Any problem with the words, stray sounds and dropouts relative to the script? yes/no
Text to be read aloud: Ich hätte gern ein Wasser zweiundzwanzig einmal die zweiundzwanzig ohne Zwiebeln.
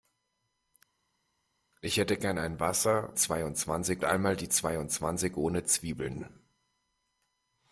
no